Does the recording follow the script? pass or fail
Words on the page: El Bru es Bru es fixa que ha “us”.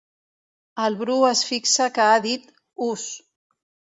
fail